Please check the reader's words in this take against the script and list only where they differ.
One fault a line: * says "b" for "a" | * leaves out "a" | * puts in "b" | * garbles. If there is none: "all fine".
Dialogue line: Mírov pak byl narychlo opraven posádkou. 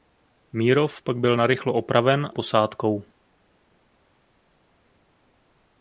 all fine